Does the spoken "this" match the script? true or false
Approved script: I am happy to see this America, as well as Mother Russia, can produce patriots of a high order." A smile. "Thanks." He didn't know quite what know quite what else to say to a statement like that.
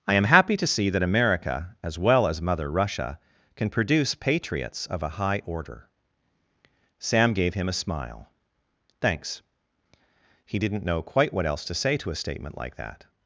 false